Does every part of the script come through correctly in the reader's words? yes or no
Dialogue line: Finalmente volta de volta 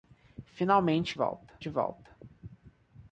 yes